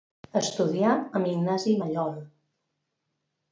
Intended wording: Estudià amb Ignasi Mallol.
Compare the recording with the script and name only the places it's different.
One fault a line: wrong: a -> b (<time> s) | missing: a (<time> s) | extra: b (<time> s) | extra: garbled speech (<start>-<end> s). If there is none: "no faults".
no faults